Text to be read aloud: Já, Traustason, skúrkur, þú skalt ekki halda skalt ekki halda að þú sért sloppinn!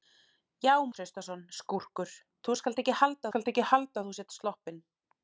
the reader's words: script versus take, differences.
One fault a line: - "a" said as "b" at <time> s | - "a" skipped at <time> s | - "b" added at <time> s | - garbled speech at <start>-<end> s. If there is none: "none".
none